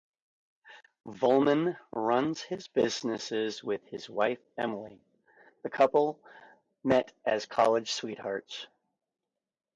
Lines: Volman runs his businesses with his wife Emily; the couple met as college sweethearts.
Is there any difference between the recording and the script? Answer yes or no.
no